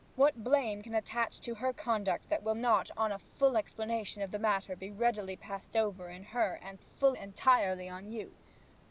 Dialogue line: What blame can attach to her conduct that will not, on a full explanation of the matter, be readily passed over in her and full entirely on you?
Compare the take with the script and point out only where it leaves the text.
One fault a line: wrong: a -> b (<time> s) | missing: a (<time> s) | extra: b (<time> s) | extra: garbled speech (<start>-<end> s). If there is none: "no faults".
no faults